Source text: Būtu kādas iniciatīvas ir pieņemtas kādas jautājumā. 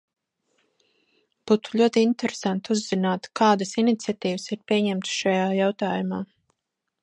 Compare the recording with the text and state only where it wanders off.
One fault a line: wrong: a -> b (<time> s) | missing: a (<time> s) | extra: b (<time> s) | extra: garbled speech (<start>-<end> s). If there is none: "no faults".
extra: ļoti interesanti uzzināt (1.8 s)
wrong: kādas -> šajā (5.2 s)